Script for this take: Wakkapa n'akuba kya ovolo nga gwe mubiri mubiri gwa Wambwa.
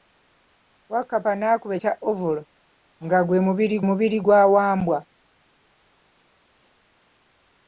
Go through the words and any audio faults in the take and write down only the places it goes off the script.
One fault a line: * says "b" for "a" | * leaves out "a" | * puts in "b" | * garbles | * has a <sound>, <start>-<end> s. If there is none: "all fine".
all fine